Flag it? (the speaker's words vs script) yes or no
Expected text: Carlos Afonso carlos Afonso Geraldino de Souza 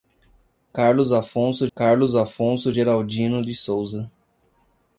no